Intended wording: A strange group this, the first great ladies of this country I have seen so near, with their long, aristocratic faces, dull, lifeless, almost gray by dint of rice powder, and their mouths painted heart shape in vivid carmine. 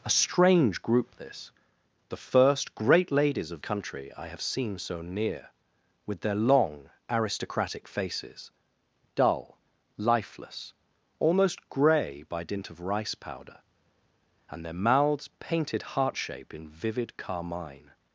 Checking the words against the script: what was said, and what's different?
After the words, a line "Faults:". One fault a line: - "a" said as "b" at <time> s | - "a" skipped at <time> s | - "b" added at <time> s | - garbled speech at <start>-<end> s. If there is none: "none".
A strange group this, the first great ladies of country I have seen so near, with their long, aristocratic faces, dull, lifeless, almost gray by dint of rice powder, and their mouths painted heart shape in vivid carmine.
Faults:
- "this" skipped at 3.6 s